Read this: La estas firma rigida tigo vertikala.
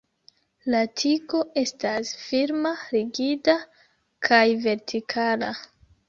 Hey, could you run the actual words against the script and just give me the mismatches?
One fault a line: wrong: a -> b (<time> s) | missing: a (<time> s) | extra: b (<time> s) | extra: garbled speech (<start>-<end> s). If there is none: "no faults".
extra: tigo (1.0 s)
wrong: tigo -> kaj (4.3 s)